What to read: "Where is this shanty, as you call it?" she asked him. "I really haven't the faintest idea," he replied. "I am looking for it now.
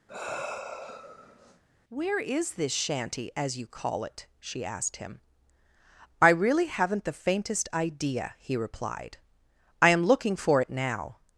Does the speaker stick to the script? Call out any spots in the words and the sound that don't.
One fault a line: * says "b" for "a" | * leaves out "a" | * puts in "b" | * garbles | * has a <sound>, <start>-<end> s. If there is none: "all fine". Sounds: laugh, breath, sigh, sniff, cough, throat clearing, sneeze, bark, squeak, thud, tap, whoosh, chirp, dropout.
* has a sigh, 0.1-1.6 s